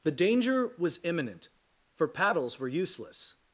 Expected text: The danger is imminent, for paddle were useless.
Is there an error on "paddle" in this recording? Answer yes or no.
yes